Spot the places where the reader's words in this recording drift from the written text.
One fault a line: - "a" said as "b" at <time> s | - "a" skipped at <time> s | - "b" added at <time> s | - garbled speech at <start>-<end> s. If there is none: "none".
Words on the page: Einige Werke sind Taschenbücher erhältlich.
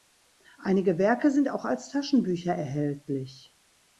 - "auch als" added at 1.5 s